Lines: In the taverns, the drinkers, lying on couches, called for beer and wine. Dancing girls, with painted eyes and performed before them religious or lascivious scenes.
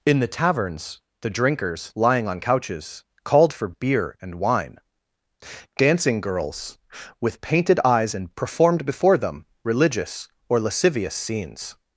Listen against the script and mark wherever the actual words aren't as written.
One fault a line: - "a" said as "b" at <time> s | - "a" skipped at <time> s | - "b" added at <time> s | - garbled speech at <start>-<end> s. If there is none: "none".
none